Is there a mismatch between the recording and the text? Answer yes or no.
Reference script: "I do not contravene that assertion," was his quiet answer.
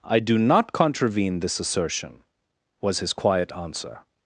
yes